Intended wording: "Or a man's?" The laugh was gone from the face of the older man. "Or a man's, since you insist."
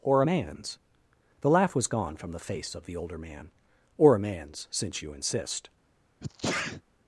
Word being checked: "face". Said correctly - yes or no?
yes